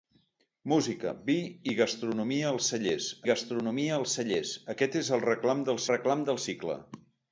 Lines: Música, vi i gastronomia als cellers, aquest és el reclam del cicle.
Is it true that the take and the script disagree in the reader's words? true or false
true